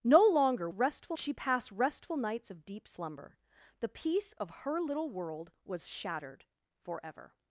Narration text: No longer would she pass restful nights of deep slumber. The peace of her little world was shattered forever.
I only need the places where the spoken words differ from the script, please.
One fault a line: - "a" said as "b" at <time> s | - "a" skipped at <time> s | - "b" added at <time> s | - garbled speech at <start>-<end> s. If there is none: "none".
- "would" said as "restful" at 0.7 s